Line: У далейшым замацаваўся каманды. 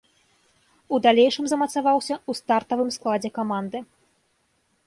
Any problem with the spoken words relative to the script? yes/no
yes